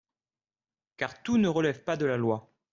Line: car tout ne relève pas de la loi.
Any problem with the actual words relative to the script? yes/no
no